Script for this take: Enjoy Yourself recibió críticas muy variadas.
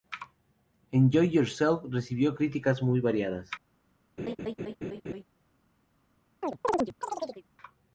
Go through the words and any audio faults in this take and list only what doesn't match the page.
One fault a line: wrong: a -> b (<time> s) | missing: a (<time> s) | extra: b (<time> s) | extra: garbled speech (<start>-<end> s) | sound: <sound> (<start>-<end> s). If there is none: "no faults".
sound: laugh (4.2-5.2 s)
sound: chirp (6.4-7.4 s)